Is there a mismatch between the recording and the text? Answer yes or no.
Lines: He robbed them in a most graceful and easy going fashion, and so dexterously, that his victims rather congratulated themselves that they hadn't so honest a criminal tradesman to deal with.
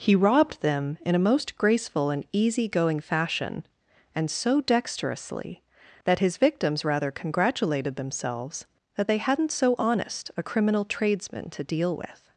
no